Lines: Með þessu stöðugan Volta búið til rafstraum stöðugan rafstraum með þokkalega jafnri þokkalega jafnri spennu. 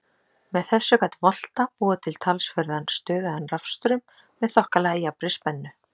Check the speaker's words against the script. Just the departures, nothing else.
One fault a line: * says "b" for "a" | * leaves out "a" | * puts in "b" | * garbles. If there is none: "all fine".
* says "gat" for "stöðugan"
* says "talsverðan" for "rafstraum"
* leaves out "þokkalega jafnri"